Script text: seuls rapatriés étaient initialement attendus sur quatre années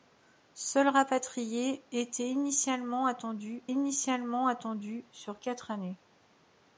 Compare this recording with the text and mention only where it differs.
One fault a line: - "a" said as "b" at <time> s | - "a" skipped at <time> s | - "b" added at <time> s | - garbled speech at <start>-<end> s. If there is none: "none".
- "initialement attendus" added at 3.7 s